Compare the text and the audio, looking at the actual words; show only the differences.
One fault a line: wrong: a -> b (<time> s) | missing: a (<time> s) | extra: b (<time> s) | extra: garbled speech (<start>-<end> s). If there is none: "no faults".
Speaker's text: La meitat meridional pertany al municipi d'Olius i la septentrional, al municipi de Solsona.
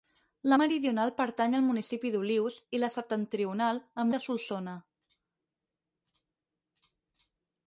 missing: meitat (0.6 s)
missing: municipi (4.1 s)